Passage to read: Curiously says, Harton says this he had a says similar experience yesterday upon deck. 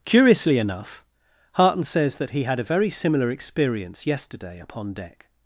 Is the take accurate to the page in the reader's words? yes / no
no